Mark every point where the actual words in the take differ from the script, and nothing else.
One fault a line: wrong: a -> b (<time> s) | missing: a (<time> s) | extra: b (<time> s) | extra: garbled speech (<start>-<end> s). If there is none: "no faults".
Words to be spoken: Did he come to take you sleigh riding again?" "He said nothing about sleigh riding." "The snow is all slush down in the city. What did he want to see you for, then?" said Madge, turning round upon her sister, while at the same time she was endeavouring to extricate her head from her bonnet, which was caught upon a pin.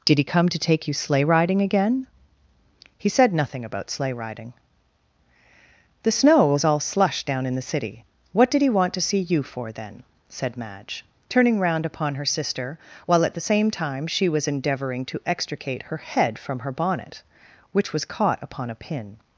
wrong: is -> was (6.5 s)